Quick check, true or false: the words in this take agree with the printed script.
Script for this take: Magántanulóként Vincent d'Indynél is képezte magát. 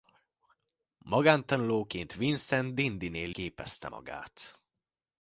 false